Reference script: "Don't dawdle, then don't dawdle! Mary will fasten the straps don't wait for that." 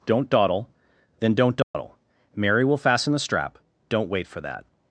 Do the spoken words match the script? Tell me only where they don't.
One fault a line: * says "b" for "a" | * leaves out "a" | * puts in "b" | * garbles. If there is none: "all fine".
* says "strap" for "straps"